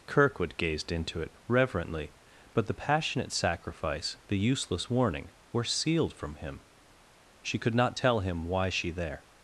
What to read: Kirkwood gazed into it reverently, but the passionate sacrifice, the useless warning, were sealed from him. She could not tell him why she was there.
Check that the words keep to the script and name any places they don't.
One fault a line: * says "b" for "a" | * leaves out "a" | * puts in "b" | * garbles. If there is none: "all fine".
* leaves out "was"